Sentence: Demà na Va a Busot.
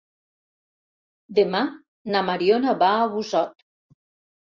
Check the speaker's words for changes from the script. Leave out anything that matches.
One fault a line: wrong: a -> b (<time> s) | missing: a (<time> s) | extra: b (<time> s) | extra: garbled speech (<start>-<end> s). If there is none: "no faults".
extra: Mariona (2.3 s)